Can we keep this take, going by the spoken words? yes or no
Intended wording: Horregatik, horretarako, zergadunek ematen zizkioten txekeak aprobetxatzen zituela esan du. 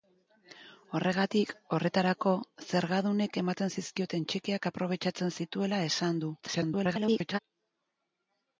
no